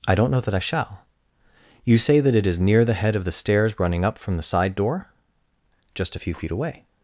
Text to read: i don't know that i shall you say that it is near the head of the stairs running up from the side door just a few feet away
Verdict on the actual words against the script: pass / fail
pass